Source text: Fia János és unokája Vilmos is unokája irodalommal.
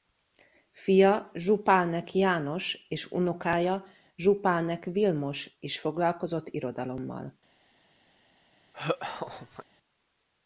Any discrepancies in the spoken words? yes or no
yes